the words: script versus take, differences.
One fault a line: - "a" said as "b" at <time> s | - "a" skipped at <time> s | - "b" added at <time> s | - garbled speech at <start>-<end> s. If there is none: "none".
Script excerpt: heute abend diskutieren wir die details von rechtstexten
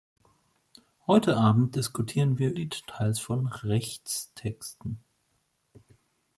none